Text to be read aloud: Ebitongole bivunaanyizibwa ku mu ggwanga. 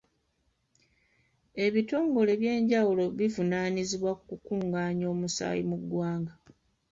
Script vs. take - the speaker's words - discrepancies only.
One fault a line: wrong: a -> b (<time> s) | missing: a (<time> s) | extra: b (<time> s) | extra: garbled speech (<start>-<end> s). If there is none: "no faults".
extra: ebyenjawulo (2.4 s)
extra: kukungaanya omusaayi (4.3 s)